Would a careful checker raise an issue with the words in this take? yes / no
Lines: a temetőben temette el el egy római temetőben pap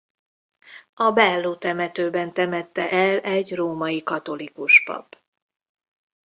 yes